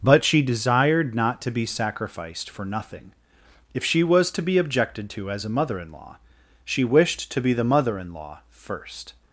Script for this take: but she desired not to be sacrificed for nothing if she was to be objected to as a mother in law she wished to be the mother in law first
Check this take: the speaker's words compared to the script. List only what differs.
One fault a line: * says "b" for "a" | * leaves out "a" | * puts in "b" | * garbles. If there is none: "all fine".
all fine